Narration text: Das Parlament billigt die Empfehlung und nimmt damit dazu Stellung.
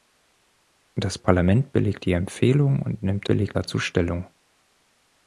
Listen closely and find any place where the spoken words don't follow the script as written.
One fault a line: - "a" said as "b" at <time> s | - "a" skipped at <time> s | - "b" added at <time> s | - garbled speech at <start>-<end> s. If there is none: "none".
- "damit" said as "billigt" at 3.3 s